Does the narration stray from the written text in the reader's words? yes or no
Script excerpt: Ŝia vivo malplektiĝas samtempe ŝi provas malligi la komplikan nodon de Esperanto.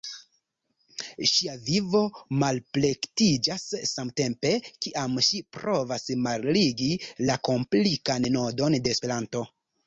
yes